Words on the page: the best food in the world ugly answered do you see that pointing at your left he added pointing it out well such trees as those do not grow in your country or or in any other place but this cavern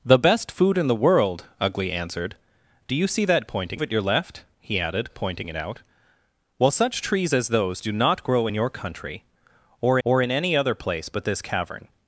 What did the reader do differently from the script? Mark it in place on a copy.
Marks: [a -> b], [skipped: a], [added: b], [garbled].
the best food in the world ugly answered do you see that pointing at your left he added pointing it out well such trees as those do not grow in your country or or in any other place but this cavern